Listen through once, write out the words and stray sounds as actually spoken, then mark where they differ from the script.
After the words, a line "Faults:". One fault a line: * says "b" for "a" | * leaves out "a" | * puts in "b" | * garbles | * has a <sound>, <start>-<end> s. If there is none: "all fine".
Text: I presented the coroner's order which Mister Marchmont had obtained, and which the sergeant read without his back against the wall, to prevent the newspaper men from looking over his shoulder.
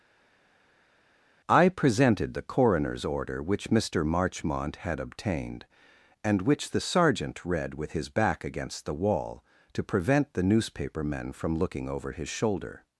I presented the coroner's order which Mister Marchmont had obtained, and which the sergeant read with his back against the wall, to prevent the newspaper men from looking over his shoulder.
Faults:
* says "with" for "without"